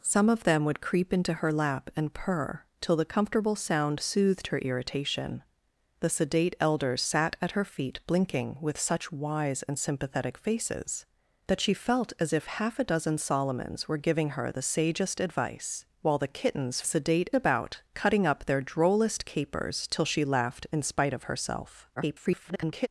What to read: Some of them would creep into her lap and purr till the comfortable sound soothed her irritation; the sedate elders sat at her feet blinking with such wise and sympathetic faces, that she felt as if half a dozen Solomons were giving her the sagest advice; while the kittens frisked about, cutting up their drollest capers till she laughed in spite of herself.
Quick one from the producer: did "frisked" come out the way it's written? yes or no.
no